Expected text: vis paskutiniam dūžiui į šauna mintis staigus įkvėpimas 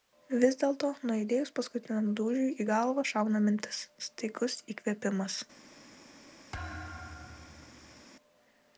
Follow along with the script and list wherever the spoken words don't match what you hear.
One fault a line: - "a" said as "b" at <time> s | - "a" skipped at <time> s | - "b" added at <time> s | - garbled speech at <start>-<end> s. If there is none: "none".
- "dėlto nuaidėjus" added at 0.6 s
- "galvą" added at 2.7 s